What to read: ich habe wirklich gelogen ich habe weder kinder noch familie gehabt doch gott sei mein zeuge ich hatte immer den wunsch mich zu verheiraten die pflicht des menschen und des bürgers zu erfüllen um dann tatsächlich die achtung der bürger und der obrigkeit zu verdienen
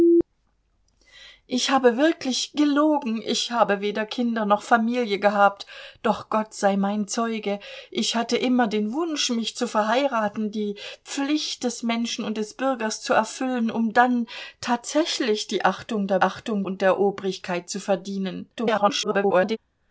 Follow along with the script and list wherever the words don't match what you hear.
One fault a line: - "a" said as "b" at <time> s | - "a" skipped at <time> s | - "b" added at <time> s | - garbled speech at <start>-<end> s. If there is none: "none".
- "bürger" said as "achtung" at 16.2 s
- garbled speech at 18.5-19.6 s